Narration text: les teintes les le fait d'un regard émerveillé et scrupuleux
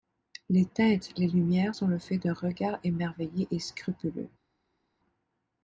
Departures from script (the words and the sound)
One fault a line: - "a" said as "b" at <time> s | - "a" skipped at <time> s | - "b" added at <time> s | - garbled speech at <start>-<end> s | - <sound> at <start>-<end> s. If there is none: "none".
- "lumières sont" added at 1.3 s